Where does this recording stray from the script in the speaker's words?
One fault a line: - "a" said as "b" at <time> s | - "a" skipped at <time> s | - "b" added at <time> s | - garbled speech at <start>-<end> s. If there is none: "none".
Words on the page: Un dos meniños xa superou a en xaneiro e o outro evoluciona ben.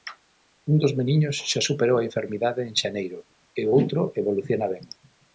- "enfermidade" added at 2.1 s